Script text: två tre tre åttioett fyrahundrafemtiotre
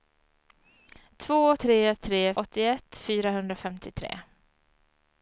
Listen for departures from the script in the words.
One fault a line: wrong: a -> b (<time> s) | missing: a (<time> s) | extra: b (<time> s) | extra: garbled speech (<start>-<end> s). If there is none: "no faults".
no faults